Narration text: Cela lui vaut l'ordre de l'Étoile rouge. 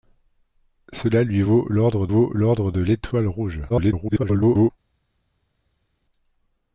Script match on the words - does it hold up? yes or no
no